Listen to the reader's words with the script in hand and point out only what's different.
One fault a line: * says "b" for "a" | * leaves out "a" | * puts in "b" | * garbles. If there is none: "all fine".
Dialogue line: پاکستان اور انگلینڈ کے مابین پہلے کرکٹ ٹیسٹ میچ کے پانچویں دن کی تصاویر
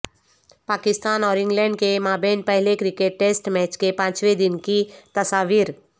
all fine